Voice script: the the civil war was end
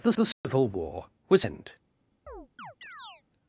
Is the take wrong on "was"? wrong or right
right